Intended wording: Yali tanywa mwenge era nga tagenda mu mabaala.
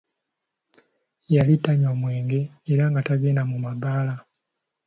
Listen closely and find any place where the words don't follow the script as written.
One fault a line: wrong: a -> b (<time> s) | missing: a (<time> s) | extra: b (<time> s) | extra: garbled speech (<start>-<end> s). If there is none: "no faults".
no faults